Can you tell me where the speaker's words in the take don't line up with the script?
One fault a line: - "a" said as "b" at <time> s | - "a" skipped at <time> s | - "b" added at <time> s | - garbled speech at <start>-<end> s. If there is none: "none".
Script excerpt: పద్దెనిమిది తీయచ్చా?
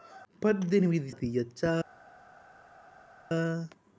none